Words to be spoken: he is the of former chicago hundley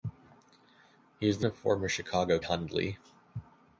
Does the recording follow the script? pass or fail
pass